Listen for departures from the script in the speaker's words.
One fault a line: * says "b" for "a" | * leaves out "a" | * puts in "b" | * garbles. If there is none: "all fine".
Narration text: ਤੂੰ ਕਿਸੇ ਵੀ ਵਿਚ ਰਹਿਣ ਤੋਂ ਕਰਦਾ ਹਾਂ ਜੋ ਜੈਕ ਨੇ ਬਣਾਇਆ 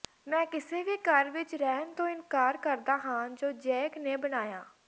* says "ਮੈਂ" for "ਤੂੰ"
* puts in "ਘਰ"
* puts in "ਇਨਕਾਰ"